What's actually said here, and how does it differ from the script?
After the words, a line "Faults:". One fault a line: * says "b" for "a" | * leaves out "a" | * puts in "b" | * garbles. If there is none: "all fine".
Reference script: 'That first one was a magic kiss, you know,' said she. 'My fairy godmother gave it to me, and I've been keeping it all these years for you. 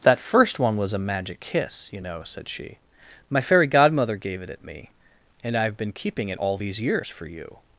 'That first one was a magic kiss, you know,' said she. 'My fairy godmother gave it at me, and I've been keeping it all these years for you.
Faults:
* says "at" for "to"